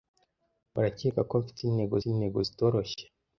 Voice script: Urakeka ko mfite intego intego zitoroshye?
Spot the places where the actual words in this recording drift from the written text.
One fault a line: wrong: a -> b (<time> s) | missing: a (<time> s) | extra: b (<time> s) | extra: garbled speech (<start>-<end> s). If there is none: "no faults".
no faults